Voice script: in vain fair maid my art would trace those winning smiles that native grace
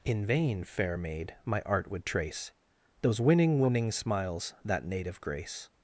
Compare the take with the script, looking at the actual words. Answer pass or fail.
fail